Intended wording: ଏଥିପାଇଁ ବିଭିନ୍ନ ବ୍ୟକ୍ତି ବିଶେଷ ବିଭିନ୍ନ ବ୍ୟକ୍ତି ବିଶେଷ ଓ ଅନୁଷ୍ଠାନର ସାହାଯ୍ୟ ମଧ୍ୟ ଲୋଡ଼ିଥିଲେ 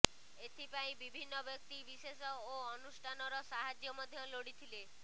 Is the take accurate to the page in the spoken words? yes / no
no